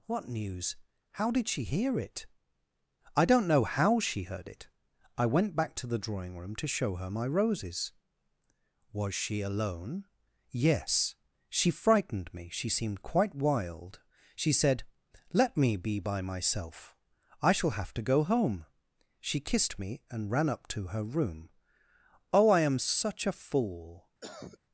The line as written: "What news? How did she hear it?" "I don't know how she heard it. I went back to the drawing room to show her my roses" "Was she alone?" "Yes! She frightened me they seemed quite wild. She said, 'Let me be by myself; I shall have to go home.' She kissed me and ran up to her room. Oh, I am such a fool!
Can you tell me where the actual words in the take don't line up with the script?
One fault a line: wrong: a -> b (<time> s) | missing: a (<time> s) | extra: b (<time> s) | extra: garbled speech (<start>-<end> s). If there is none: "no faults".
wrong: they -> she (12.5 s)